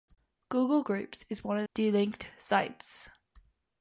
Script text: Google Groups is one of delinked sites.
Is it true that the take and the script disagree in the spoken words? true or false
false